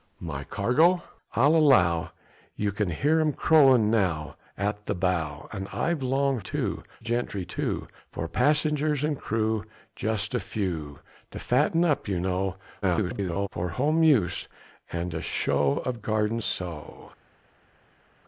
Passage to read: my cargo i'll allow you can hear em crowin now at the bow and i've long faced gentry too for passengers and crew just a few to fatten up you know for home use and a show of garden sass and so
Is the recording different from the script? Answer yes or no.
yes